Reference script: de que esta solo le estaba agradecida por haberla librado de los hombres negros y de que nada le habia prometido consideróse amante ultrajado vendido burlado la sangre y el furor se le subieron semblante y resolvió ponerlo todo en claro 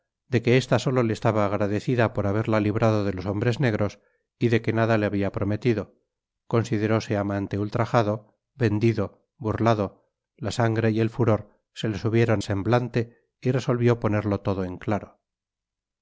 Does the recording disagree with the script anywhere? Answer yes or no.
no